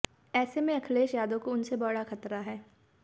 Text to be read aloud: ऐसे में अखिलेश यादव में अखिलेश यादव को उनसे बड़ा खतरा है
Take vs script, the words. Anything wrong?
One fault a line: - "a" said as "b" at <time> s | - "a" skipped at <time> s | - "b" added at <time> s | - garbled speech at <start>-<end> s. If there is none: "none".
- "में अखिलेश यादव" skipped at 1.4 s